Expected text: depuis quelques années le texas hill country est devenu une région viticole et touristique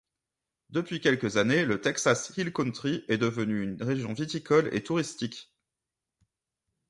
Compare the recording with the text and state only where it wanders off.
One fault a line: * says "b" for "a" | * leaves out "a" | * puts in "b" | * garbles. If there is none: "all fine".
all fine